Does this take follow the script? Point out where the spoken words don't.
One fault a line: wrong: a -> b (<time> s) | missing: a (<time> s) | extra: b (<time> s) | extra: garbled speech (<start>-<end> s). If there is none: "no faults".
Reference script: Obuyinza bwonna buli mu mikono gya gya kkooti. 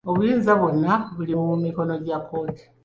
missing: gya (2.2 s)